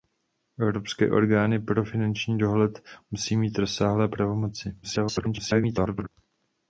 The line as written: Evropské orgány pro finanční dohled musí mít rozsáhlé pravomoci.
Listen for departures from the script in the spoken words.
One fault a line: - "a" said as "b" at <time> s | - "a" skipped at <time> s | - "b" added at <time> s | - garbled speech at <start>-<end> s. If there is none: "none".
- garbled speech at 4.8-6.1 s